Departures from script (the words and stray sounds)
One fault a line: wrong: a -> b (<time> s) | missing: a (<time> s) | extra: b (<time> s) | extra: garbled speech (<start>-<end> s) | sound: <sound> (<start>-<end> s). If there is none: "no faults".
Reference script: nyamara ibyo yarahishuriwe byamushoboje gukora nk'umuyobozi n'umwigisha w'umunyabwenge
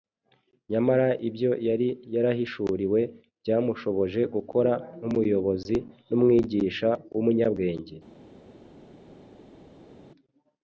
extra: yari (1.7 s)